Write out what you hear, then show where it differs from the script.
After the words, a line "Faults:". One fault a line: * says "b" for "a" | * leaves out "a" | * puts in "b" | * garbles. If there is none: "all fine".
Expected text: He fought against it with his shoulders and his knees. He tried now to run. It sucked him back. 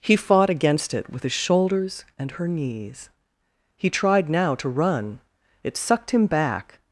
He fought against it with his shoulders and her knees. He tried now to run. It sucked him back.
Faults:
* says "her" for "his"